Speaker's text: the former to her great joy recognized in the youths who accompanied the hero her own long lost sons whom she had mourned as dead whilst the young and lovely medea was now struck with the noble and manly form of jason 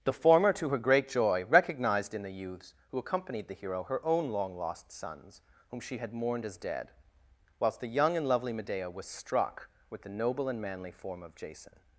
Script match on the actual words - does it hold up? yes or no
no